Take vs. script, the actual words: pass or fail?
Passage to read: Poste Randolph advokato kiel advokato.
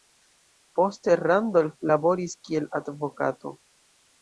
fail